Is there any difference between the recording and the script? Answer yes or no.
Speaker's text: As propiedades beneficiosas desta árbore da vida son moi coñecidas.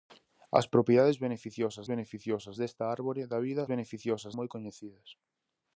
yes